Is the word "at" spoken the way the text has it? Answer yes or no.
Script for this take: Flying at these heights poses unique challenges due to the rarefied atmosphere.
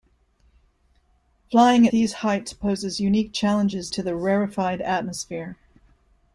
no